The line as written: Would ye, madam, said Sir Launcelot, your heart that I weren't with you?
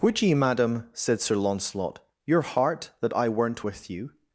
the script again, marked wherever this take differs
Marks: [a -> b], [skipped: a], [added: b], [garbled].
Would ye, madam, said Sir Launcelot, your heart that I weren't with you?